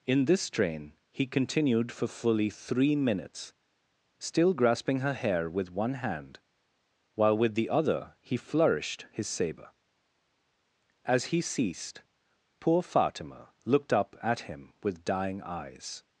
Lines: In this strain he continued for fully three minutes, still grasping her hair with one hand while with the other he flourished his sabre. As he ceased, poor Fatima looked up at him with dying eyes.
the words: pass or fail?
pass